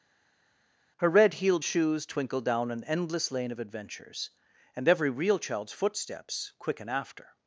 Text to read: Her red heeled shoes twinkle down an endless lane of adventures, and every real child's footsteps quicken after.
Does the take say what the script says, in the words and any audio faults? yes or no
yes